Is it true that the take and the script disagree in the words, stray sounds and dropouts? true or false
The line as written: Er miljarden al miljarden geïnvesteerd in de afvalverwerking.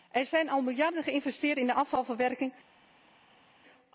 true